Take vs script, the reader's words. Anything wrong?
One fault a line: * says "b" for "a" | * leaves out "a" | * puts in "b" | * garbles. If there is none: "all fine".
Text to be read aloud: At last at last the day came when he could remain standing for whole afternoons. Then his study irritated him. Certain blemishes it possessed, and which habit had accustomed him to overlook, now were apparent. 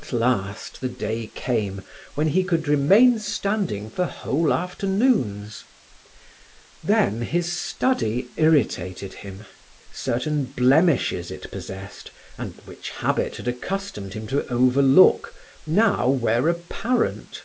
* leaves out "at last"